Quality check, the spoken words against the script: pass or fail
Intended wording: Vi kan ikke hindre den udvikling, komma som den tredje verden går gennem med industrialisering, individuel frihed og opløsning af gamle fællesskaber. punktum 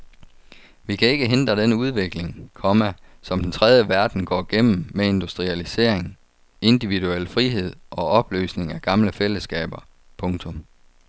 pass